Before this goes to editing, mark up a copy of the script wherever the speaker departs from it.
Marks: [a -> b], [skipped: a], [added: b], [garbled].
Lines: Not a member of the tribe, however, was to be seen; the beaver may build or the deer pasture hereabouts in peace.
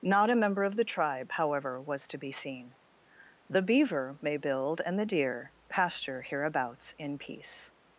Not a member of the tribe, however, was to be seen; the beaver may build [or -> and] the deer pasture hereabouts in peace.